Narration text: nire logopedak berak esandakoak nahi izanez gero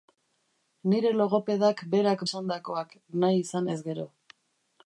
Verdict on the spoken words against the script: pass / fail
pass